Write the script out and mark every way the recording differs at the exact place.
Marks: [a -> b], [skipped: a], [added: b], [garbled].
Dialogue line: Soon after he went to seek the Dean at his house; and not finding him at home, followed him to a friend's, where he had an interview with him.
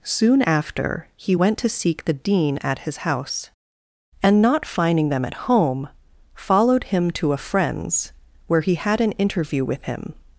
Soon after he went to seek the Dean at his house; and not finding [him -> them] at home, followed him to a friend's, where he had an interview with him.